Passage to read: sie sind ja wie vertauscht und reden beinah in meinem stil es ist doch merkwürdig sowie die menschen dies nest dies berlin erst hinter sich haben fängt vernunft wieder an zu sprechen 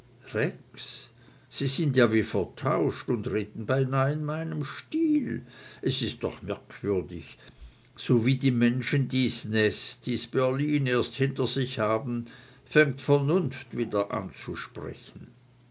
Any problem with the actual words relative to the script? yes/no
no